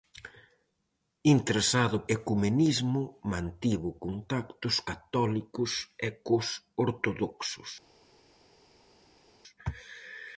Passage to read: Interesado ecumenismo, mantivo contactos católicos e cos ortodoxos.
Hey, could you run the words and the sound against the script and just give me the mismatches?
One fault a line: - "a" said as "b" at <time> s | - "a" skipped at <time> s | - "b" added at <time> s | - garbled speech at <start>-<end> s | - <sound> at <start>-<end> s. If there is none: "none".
none